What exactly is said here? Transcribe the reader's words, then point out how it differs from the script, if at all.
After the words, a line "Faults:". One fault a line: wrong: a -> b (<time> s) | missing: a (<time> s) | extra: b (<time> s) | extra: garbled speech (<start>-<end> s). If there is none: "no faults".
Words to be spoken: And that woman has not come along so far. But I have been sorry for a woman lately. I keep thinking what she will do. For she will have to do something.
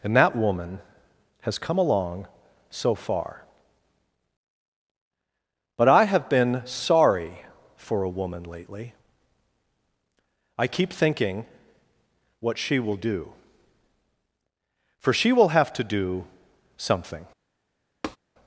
And that woman has come along so far. But I have been sorry for a woman lately. I keep thinking what she will do. For she will have to do something.
Faults:
missing: not (1.6 s)